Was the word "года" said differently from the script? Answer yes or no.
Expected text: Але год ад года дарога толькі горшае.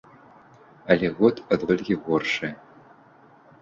yes